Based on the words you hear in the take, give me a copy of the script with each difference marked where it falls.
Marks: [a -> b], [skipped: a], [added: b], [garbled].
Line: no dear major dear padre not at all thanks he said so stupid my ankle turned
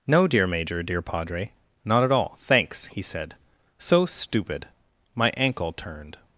no dear major dear padre not at all thanks he said so stupid my ankle turned